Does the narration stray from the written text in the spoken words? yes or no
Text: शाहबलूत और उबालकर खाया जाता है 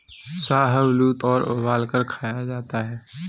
no